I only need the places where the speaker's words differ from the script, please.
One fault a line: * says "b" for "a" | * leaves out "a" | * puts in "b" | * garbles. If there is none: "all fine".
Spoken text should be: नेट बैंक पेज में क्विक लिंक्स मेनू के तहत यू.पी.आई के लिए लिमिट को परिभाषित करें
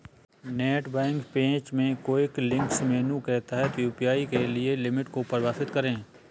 all fine